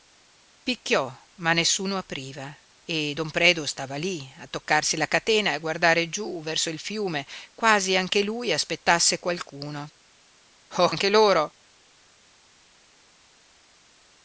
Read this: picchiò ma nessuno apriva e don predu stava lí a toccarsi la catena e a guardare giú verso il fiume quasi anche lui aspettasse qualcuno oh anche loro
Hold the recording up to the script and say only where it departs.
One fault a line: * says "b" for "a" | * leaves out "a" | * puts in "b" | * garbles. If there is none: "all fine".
all fine